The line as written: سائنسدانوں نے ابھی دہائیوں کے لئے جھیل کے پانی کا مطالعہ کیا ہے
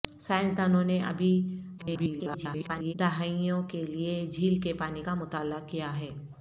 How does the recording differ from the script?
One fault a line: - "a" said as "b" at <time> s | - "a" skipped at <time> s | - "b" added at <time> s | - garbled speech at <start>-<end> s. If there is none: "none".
- garbled speech at 1.8-2.9 s